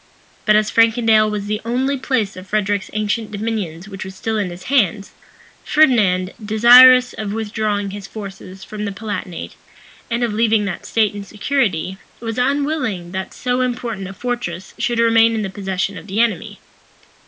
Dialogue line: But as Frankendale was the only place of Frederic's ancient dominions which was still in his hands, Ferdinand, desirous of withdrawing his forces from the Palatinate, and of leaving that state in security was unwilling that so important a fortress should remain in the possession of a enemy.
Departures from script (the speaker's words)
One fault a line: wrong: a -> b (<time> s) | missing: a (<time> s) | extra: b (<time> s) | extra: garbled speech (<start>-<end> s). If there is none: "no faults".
wrong: a -> the (16.1 s)